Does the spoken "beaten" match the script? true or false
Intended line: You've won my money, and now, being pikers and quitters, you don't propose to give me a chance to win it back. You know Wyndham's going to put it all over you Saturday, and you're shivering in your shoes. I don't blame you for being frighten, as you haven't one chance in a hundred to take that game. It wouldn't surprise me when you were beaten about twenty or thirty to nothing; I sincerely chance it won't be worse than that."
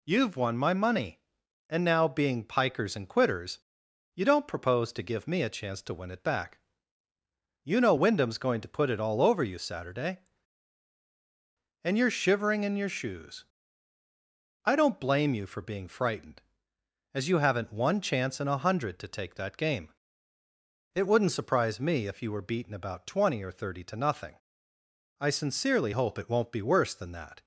true